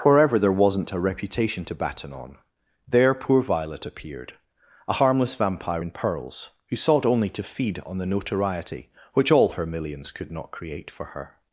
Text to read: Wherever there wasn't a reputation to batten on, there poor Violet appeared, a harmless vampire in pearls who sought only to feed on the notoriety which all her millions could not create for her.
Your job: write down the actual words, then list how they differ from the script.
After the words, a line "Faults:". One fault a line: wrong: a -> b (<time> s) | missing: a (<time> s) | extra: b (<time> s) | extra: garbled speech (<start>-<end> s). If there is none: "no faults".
Wherever there wasn't a reputation to batten on, there poor Violet appeared, a harmless vampire in pearls who sought only to feed on the notoriety which all her millions could not create for her.
Faults:
no faults